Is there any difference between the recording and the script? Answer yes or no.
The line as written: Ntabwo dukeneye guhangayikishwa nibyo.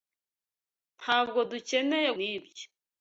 yes